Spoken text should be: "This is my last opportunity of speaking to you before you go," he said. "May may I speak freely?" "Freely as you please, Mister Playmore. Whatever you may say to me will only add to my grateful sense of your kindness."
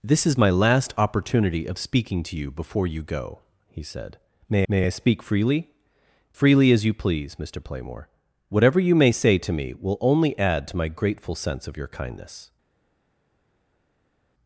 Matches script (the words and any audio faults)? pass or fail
pass